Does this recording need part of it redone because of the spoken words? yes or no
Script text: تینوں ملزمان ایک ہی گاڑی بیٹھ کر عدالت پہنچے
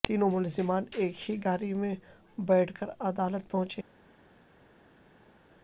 yes